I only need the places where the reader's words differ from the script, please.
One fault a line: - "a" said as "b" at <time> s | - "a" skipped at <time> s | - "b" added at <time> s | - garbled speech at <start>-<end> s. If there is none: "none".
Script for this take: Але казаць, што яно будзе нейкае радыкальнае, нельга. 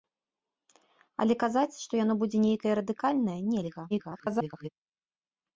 - garbled speech at 3.9-4.7 s